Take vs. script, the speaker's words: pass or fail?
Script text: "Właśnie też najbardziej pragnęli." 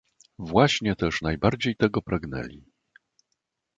fail